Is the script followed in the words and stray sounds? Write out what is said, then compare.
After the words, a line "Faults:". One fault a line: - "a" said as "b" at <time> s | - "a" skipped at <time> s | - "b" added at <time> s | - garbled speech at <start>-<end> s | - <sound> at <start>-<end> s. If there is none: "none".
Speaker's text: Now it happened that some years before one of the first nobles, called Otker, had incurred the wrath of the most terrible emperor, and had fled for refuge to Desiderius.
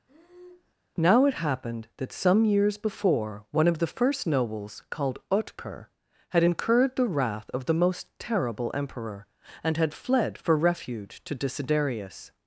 Now it happened that some years before one of the first nobles, called Otker, had incurred the wrath of the most terrible emperor, and had fled for refuge to Desiderius.
Faults:
- breath at 0.1-0.7 s